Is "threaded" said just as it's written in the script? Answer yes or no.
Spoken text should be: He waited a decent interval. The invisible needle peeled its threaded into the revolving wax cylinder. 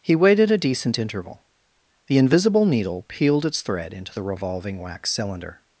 no